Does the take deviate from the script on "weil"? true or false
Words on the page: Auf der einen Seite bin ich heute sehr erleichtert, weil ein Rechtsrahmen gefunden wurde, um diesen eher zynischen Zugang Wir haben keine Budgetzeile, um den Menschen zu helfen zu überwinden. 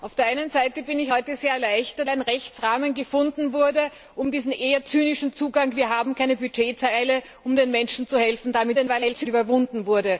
true